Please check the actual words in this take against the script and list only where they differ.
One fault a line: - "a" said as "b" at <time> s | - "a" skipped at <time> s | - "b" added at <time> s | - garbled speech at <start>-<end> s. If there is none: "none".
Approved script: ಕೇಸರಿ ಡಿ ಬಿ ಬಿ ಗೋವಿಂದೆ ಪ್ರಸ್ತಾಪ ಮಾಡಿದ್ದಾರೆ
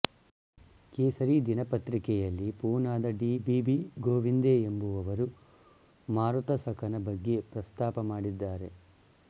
- "ದಿನಪತ್ರಿಕೆಯಲ್ಲಿ ಪೂನಾದ" added at 1.4 s
- "ಎಂಬುವವರು ಮಾರುತಸಖನ ಬಗ್ಗೆ" added at 4.6 s